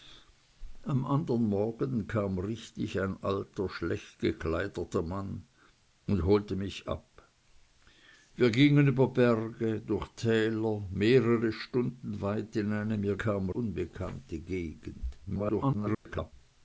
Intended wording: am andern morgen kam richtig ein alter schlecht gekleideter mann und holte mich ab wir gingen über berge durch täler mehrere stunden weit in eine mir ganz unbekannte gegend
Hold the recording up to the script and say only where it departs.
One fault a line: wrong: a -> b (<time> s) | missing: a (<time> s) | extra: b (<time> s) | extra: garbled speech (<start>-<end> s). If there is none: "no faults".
wrong: ganz -> kam (13.2 s)
extra: garbled speech (15.3-16.3 s)